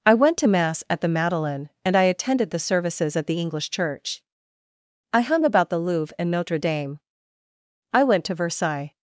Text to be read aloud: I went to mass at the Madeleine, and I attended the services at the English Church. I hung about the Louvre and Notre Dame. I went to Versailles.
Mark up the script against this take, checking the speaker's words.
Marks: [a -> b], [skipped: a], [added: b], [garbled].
I went to mass at the Madeleine, and I attended the services at the English Church. I hung about the Louvre and Notre Dame. I went to Versailles.